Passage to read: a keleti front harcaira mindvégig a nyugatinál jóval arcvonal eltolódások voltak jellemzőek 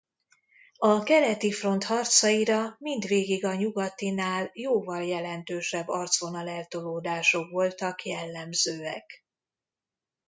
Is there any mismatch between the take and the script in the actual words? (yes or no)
yes